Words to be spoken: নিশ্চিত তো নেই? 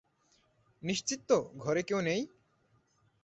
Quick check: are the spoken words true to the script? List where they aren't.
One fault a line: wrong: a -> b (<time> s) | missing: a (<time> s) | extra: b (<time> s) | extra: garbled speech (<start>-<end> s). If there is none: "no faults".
extra: ঘরে কেউ (1.6 s)